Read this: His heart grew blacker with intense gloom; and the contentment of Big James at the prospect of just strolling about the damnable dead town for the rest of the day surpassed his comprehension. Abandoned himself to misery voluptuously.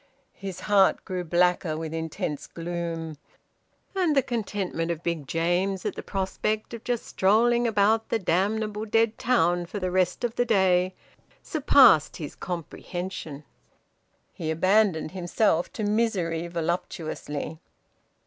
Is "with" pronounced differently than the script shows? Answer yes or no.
no